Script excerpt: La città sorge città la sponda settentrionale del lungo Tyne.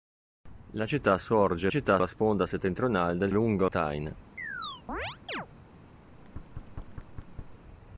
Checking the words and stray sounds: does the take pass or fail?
fail